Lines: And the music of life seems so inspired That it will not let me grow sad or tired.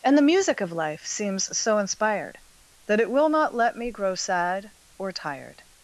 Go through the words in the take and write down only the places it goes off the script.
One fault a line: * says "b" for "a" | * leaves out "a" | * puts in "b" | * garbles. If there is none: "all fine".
all fine